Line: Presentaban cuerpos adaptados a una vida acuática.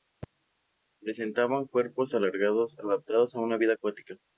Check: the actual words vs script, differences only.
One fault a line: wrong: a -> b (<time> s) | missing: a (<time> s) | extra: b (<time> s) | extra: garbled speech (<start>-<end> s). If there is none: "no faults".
extra: alargados (2.1 s)